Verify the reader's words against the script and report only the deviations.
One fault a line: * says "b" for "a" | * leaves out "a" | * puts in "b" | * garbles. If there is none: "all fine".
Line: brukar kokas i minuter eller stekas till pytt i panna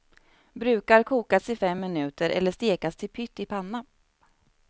* puts in "fem"